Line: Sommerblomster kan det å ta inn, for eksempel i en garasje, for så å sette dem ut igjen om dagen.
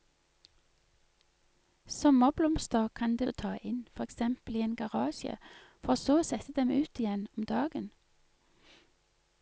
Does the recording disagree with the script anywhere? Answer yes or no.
no